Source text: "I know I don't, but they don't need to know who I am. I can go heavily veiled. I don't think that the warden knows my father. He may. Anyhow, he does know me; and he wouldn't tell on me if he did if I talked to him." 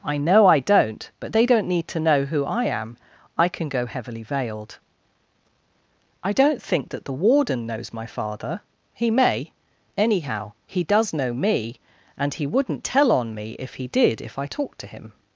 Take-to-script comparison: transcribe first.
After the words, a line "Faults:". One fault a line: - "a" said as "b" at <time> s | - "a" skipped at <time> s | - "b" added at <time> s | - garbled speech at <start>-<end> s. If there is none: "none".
"I know I don't, but they don't need to know who I am. I can go heavily veiled. I don't think that the warden knows my father. He may. Anyhow, he does know me; and he wouldn't tell on me if he did if I talked to him."
Faults:
none